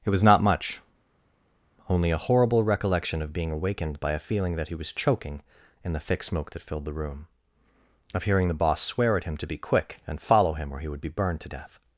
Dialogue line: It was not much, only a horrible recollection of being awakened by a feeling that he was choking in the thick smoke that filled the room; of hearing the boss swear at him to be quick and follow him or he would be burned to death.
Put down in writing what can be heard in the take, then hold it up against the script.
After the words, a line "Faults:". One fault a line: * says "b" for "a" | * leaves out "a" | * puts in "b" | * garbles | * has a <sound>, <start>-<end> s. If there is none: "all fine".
It was not much, only a horrible recollection of being awakened by a feeling that he was choking in the thick smoke that filled the room; of hearing the boss swear at him to be quick and follow him or he would be burned to death.
Faults:
all fine